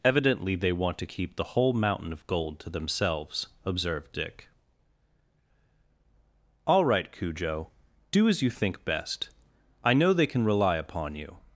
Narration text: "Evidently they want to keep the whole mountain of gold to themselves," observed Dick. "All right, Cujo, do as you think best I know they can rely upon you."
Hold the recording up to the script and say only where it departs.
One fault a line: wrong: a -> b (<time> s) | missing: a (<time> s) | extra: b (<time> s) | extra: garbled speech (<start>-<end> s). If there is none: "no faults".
no faults